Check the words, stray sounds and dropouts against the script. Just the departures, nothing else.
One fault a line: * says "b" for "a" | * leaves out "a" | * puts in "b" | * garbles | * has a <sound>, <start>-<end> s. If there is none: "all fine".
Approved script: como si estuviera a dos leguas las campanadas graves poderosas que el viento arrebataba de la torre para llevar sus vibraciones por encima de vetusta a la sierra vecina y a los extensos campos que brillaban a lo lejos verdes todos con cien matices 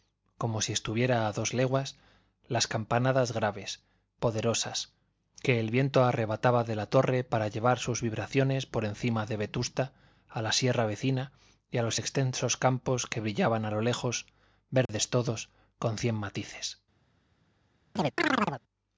* has a dropout, 14.9-14.9 s
* has a chirp, 18.0-18.6 s